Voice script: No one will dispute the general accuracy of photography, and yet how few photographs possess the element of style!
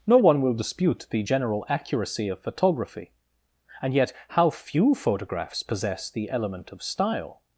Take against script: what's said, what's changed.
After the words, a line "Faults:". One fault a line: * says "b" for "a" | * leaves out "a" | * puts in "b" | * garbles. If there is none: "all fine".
No one will dispute the general accuracy of photography, and yet how few photographs possess the element of style!
Faults:
all fine